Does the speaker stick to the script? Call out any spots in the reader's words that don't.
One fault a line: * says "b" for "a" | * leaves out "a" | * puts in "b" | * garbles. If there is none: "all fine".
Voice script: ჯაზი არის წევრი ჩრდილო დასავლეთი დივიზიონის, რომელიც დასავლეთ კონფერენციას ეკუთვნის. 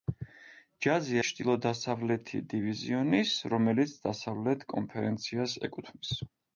* leaves out "არის წევრი"